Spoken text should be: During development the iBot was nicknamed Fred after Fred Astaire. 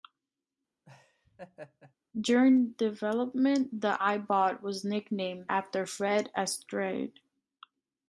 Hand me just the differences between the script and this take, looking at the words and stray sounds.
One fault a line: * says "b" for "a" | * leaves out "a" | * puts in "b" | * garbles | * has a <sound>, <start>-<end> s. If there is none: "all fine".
* has a laugh, 0.9-2.0 s
* leaves out "Fred"